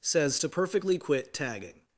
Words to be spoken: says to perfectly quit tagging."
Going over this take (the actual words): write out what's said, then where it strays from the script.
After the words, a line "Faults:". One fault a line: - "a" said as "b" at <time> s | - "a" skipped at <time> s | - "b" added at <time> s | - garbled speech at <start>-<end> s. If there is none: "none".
says to perfectly quit tagging."
Faults:
none